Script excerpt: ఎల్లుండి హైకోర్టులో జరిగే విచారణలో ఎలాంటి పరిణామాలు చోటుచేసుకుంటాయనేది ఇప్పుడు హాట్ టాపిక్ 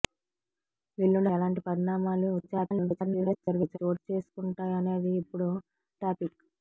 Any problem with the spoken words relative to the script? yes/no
yes